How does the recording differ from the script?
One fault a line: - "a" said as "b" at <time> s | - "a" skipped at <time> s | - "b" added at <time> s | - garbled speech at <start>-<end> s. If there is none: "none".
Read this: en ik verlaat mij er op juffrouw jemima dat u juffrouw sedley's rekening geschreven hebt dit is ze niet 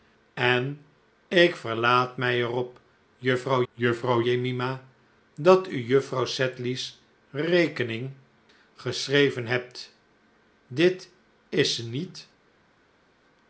- "juffrouw" added at 3.7 s